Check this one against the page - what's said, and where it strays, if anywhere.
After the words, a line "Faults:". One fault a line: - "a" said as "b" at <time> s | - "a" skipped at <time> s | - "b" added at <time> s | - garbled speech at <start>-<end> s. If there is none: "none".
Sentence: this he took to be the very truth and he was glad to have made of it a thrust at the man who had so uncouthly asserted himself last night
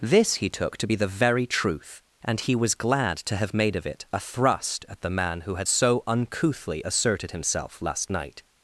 this he took to be the very truth and he was glad to have made of it a thrust at the man who had so uncouthly asserted himself last night
Faults:
none